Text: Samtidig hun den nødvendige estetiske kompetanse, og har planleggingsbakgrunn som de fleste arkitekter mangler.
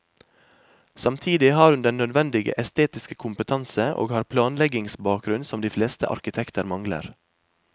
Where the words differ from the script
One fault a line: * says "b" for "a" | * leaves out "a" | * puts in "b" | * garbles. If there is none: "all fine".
* puts in "har"